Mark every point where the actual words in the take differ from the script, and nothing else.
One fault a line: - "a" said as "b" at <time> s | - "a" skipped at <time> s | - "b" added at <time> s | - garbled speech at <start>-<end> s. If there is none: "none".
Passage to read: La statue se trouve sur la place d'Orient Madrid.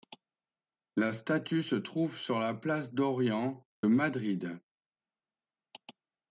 none